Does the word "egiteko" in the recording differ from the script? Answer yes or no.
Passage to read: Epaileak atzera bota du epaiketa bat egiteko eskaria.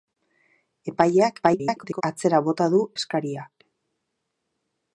yes